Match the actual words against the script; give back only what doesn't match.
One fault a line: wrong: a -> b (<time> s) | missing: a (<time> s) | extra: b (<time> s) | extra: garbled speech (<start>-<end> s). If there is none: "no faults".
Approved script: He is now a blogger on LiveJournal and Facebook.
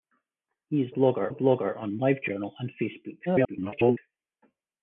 wrong: now -> blogger (0.9 s)
extra: garbled speech (3.3-4.0 s)